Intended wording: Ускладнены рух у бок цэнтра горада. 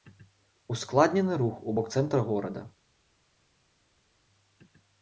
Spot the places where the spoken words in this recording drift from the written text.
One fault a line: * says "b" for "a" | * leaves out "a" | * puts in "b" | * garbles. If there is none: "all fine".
all fine